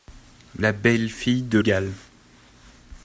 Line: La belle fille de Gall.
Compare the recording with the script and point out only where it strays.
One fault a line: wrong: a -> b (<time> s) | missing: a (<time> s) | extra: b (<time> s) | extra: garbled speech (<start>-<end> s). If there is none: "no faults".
no faults